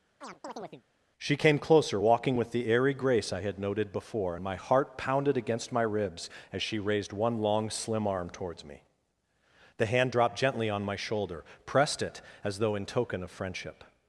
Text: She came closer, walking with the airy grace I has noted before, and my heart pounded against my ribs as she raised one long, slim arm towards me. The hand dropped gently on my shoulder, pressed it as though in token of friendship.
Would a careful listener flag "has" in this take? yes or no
yes